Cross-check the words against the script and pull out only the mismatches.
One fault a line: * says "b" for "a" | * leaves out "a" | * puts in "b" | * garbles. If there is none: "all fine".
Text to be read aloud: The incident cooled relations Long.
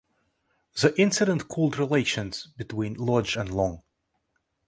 * puts in "between Lodge and"